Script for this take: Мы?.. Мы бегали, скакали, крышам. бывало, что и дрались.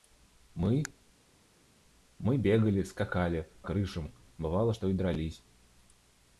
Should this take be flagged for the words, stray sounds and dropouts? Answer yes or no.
no